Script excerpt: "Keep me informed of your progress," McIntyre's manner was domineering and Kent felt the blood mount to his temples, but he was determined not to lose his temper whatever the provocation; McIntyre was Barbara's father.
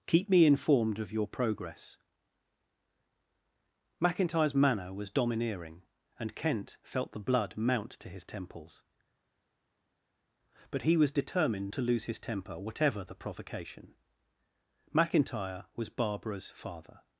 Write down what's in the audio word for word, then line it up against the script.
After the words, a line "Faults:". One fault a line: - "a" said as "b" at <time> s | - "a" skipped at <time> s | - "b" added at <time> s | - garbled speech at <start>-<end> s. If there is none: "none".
"Keep me informed of your progress," McIntyre's manner was domineering and Kent felt the blood mount to his temples, but he was determined to lose his temper whatever the provocation; McIntyre was Barbara's father.
Faults:
- "not" skipped at 11.7 s